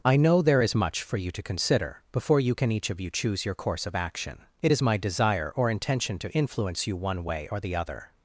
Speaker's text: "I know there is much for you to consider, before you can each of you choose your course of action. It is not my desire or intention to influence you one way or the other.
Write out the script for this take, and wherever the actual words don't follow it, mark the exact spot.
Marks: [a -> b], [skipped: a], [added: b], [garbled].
"I know there is much for you to consider, before you can each of you choose your course of action. It is [skipped: not] my desire or intention to influence you one way or the other.